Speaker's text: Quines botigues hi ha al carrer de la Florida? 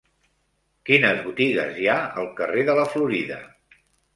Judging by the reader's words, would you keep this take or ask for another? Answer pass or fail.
pass